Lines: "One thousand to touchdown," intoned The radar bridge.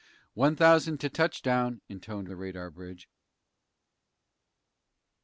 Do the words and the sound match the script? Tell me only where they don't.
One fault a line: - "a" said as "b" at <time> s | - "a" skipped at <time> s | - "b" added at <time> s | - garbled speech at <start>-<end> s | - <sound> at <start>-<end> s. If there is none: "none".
none